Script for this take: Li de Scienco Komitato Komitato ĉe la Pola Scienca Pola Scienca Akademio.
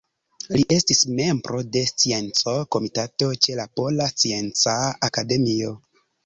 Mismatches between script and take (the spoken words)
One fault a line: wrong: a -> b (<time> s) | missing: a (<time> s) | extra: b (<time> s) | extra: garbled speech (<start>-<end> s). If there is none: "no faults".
extra: estis membro (0.8 s)
missing: Komitato (3.3 s)
missing: Pola Scienca (4.8 s)